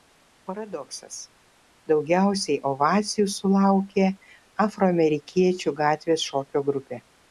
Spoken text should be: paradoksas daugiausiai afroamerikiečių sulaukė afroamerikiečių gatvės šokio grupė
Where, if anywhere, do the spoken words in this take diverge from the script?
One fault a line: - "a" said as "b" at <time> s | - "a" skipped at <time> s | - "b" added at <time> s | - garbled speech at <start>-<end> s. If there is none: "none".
- "afroamerikiečių" said as "ovacijų" at 2.7 s